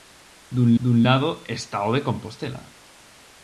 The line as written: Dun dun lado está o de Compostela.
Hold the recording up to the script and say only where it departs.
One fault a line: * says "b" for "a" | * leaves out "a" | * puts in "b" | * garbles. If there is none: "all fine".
all fine